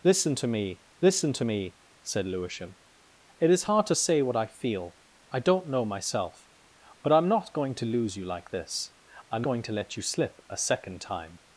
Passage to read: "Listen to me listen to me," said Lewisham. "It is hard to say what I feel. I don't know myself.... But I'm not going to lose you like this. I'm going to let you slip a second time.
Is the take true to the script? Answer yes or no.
yes